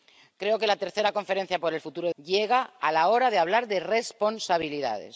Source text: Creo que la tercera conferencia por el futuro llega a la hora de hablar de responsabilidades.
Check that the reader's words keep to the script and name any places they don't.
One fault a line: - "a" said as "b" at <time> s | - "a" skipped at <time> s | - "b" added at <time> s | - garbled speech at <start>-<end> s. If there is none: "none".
none